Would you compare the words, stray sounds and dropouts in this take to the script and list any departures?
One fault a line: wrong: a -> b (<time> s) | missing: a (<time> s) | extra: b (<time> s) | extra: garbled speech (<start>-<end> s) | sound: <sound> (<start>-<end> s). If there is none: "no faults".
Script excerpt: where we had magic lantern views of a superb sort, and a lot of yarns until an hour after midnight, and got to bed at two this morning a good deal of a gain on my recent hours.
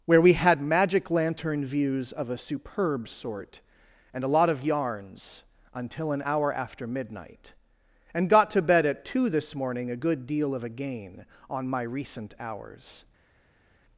no faults